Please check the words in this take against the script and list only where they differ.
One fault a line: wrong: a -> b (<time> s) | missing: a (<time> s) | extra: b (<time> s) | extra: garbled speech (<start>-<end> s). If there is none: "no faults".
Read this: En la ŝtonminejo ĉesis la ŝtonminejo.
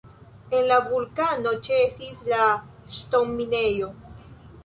wrong: ŝtonminejo -> vulkano (0.8 s)